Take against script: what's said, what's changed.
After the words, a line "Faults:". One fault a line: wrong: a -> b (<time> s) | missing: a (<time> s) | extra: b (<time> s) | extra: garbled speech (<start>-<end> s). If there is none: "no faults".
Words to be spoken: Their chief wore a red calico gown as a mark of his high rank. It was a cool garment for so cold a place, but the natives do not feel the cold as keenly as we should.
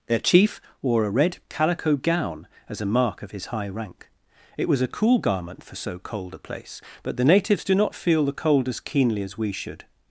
Their chief wore a red calico gown as a mark of his high rank. It was a cool garment for so cold a place, but the natives do not feel the cold as keenly as we should.
Faults:
no faults